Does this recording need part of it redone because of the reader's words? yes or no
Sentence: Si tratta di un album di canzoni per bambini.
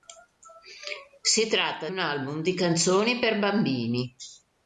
yes